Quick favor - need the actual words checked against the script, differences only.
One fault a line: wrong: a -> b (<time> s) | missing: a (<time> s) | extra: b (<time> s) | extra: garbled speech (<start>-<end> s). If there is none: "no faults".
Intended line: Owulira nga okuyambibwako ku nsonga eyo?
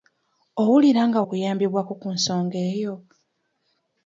no faults